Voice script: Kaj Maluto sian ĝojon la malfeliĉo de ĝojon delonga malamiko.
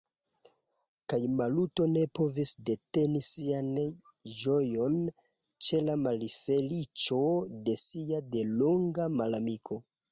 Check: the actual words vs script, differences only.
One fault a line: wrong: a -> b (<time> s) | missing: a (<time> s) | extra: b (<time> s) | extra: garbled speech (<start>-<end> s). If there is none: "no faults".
extra: ne povis deteni (1.9 s)
extra: ĉe (5.7 s)
wrong: ĝojon -> sia (7.9 s)